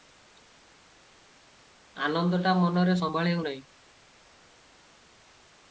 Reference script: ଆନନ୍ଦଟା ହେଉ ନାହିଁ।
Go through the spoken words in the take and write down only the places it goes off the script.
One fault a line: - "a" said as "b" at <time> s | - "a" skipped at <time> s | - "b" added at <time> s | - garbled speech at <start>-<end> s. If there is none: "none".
- "ମନରେ ସମ୍ଭାଳି" added at 2.6 s